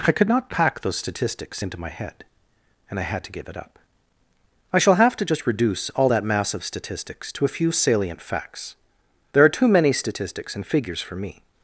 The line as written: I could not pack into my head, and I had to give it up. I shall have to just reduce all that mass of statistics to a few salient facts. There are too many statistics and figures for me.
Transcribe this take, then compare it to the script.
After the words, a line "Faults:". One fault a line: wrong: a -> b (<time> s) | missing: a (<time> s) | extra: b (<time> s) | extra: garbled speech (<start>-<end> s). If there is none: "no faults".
I could not pack those statistics into my head, and I had to give it up. I shall have to just reduce all that mass of statistics to a few salient facts. There are too many statistics and figures for me.
Faults:
extra: those statistics (0.8 s)